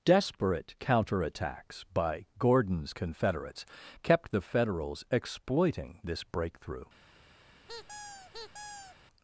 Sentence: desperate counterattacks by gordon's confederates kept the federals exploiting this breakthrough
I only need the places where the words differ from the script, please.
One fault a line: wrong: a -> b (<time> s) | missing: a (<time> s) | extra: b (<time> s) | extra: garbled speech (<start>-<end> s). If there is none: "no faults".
no faults